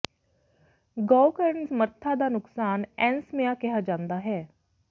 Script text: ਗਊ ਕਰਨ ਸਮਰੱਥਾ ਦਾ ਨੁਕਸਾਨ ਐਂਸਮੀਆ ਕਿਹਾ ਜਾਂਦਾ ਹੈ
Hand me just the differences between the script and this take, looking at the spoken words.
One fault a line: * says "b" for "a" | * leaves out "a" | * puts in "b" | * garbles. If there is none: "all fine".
all fine